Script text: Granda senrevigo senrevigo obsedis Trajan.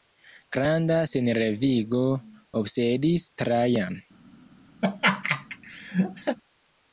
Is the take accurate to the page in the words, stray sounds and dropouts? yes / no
no